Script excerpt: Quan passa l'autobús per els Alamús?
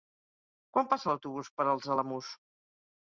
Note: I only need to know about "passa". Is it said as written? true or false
true